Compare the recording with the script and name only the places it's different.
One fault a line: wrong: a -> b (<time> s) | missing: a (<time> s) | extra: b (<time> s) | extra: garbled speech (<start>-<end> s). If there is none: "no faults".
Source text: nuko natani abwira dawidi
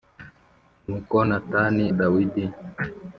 missing: abwira (1.8 s)